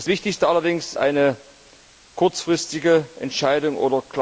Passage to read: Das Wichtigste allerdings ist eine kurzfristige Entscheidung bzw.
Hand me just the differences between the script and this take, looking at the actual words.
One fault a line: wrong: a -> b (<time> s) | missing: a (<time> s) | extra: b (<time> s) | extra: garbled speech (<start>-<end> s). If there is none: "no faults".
missing: ist (0.9 s)